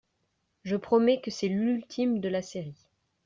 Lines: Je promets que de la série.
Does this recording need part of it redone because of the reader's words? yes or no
yes